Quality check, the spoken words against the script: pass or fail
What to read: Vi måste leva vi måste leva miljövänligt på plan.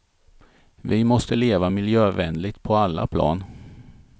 fail